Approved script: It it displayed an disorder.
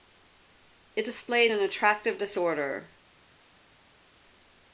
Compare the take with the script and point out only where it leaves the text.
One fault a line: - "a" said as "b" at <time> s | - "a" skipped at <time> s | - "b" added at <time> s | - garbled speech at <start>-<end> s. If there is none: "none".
- "it" skipped at 1.1 s
- "attractive" added at 1.6 s